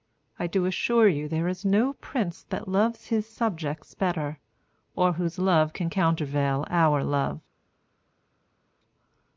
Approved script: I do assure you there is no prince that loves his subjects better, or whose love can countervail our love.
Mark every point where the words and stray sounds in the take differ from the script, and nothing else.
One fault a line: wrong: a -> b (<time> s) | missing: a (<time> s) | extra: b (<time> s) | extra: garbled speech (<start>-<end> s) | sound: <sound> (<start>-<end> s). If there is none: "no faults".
no faults